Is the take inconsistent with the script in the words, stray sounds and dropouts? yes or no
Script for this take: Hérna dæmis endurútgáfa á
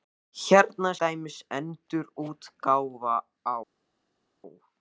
no